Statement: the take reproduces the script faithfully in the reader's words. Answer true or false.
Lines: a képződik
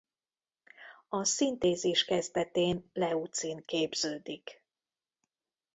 false